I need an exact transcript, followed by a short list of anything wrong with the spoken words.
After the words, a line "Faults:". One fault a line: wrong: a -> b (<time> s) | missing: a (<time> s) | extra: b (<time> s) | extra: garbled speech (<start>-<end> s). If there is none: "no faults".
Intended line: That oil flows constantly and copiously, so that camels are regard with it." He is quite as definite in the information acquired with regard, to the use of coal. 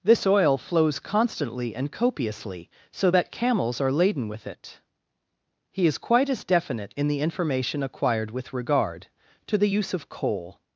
This oil flows constantly and copiously, so that camels are laden with it." He is quite as definite in the information acquired with regard, to the use of coal.
Faults:
wrong: That -> This (0.0 s)
wrong: regard -> laden (3.9 s)